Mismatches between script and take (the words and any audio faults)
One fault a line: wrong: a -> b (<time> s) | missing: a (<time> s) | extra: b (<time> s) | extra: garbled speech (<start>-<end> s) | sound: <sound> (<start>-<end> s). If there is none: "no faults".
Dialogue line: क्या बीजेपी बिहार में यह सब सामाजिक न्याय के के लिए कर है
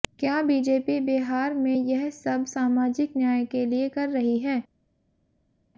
missing: के (3.7 s)
extra: रही (4.1 s)